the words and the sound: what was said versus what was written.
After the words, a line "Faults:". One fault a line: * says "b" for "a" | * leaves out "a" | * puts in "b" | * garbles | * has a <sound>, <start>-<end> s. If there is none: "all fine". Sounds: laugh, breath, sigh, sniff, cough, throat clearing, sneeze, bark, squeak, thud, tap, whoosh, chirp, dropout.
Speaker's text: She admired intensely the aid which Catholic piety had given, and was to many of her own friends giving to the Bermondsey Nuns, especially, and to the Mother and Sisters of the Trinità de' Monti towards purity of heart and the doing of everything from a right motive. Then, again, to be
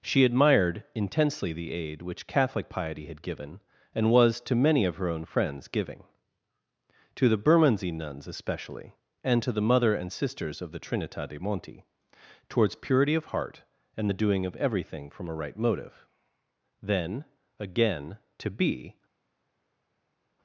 She admired intensely the aid which Catholic piety had given, and was to many of her own friends giving to the Bermondsey Nuns, especially, and to the Mother and Sisters of the Trinità de' Monti towards purity of heart and the doing of everything from a right motive. Then, again, to be
Faults:
all fine